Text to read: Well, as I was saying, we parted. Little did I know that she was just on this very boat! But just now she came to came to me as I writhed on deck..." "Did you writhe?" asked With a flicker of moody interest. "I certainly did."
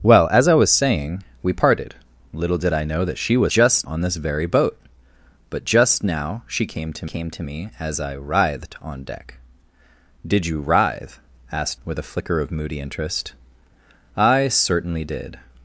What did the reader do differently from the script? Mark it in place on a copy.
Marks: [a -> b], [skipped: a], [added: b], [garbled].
Well, as I was saying, we parted. Little did I know that she was just on this very boat! But just now she came to came to me as I writhed on deck..." "Did you writhe?" asked With a flicker of moody interest. "I certainly did."